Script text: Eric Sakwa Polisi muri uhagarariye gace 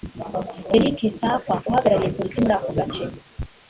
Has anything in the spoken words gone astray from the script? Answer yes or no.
yes